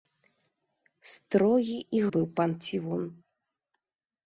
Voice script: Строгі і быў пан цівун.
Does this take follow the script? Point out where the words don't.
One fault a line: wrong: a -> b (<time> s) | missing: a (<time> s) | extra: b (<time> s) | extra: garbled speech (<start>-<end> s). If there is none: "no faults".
no faults